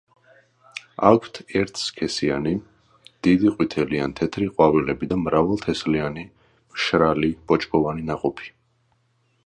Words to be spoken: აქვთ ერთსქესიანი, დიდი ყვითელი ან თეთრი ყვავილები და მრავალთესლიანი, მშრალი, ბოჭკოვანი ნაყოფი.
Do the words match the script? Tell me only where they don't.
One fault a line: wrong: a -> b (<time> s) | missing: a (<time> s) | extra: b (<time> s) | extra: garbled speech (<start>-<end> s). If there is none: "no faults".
no faults